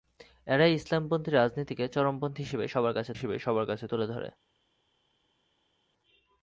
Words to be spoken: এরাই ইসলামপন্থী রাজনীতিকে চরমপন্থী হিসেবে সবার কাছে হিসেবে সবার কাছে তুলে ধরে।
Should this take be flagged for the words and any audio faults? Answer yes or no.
no